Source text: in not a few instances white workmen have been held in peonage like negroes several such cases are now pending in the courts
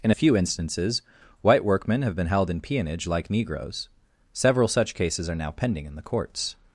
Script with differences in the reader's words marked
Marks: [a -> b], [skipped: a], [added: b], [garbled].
in [skipped: not] a few instances white workmen have been held in peonage like negroes several such cases are now pending in the courts